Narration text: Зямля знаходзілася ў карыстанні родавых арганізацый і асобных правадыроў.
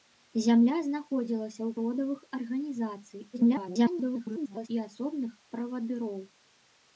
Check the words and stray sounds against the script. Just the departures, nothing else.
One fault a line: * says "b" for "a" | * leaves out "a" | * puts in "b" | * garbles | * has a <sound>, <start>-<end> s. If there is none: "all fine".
* leaves out "карыстанні"
* garbles